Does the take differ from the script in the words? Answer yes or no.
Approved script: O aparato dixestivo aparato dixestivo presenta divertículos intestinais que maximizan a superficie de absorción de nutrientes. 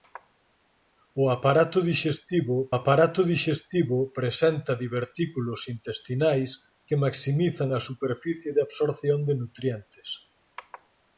no